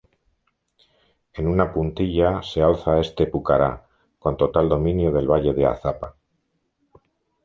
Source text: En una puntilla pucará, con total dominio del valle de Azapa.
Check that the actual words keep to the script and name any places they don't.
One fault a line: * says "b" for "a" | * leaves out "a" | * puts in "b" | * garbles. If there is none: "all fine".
* puts in "se alza este"